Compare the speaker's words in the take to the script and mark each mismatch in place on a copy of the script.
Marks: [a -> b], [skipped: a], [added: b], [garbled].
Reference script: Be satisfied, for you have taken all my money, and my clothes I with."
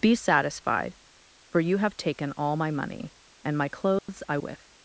Be satisfied, for you have taken all my money, and my clothes I with."